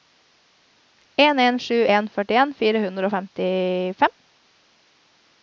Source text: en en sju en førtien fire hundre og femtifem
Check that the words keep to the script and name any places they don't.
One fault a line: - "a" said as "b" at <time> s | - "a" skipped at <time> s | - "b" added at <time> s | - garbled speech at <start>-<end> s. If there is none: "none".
none